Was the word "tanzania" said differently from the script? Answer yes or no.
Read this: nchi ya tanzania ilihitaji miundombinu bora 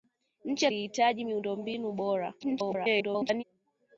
yes